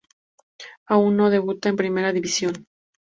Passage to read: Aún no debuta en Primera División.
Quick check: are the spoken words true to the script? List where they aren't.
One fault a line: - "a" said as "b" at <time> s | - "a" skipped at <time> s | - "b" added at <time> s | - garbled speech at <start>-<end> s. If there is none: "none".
none